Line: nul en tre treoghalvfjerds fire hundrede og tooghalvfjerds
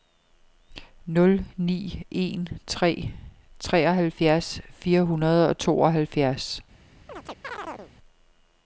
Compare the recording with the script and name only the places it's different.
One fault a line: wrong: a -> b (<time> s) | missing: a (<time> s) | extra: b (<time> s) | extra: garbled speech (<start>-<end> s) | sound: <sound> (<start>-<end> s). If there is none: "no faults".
extra: ni (1.6 s)
sound: chirp (7.1-7.9 s)